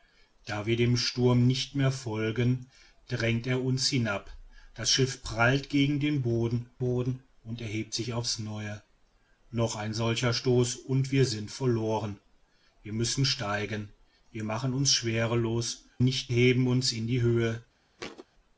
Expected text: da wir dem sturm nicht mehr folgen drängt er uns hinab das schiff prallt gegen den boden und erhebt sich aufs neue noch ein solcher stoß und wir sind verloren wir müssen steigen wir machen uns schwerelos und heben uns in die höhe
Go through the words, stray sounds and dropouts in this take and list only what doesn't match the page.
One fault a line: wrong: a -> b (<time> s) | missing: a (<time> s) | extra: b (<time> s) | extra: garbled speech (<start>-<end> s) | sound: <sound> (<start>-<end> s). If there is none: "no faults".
extra: boden (6.8 s)
wrong: und -> nicht (16.0 s)
sound: thud (18.0-18.3 s)